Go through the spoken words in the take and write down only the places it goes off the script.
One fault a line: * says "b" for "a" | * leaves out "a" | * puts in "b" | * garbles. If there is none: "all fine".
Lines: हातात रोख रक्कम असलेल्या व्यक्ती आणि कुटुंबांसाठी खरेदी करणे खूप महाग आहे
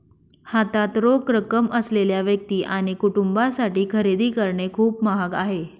all fine